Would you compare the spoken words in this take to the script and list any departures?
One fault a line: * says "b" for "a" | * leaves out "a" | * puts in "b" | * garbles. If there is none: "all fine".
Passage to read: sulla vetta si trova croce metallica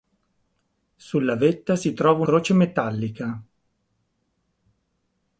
all fine